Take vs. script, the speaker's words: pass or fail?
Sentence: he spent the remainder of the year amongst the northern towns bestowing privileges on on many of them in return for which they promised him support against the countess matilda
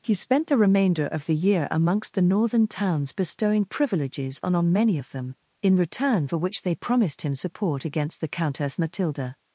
pass